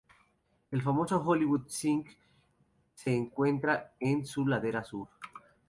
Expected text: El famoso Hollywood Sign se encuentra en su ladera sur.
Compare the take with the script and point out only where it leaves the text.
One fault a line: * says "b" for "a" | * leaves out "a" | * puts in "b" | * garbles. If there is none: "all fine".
all fine